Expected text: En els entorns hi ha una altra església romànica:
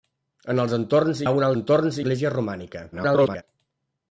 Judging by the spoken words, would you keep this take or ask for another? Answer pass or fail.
fail